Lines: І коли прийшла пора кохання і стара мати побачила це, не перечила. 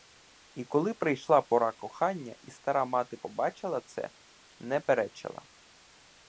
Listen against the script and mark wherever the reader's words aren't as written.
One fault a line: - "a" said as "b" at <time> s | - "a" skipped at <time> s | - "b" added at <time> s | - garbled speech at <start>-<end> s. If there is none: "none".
none